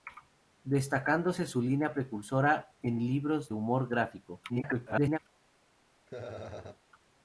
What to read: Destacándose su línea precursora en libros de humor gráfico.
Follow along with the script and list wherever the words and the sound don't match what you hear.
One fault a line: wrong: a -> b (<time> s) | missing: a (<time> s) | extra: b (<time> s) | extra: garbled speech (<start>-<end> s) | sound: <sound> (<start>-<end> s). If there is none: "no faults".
missing: de (3.5 s)
extra: garbled speech (4.5-5.2 s)
sound: laugh (6.1-6.8 s)